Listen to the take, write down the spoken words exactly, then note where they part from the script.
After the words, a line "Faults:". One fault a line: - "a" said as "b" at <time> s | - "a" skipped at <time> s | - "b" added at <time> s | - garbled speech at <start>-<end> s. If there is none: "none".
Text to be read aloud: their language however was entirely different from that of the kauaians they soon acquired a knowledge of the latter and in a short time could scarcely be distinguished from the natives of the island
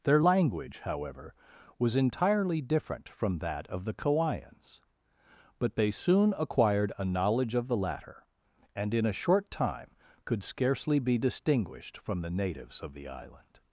their language however was entirely different from that of the kauaians but they soon acquired a knowledge of the latter and in a short time could scarcely be distinguished from the natives of the island
Faults:
- "but" added at 5.6 s